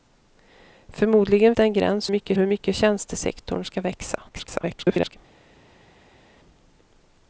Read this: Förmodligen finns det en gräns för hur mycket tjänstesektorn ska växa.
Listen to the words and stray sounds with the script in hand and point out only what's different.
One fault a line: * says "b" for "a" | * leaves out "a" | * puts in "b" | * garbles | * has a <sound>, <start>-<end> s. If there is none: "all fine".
* leaves out "finns"
* says "mycket" for "för"
* garbles